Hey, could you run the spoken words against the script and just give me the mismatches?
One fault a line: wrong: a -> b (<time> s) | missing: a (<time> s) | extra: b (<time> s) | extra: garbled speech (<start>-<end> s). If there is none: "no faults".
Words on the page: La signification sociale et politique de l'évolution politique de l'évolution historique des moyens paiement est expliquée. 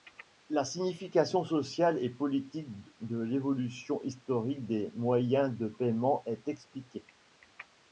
missing: politique de l'évolution (4.0 s)
extra: de (5.5 s)